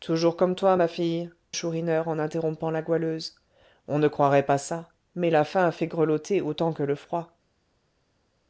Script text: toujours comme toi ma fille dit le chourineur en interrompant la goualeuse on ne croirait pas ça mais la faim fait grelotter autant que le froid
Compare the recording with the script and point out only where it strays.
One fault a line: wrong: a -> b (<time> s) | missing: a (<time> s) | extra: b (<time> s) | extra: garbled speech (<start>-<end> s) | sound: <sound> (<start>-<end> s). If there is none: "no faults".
missing: dit le (1.3 s)